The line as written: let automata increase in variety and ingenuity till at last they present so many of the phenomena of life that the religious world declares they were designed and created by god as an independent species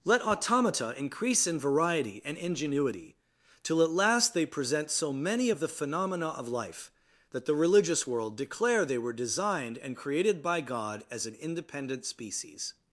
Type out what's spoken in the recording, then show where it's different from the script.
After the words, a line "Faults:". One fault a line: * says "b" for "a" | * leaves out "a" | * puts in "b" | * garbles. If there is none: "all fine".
let automata increase in variety and ingenuity till at last they present so many of the phenomena of life that the religious world declare they were designed and created by god as an independent species
Faults:
* says "declare" for "declares"